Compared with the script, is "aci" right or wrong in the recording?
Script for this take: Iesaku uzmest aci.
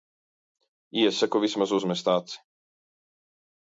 right